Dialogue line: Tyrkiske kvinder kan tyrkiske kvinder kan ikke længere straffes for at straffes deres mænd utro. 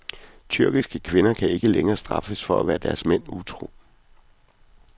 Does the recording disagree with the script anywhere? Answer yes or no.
yes